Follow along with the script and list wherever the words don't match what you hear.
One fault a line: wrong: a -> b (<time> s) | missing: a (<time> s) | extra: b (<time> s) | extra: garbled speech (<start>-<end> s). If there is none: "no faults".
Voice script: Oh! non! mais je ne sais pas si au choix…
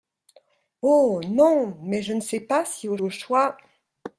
extra: au (3.0 s)